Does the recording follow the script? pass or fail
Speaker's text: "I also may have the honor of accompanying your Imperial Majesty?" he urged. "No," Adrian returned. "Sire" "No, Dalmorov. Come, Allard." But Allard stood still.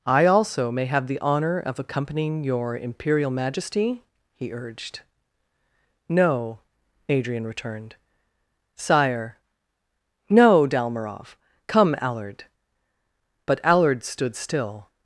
pass